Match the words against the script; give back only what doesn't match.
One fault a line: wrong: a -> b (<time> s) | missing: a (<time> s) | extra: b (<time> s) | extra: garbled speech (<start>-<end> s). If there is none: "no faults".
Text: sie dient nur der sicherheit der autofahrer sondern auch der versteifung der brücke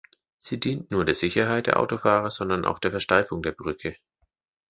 no faults